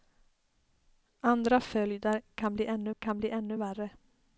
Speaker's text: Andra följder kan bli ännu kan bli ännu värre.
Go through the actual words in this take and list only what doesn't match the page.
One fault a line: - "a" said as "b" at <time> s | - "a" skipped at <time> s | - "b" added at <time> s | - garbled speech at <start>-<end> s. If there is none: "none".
none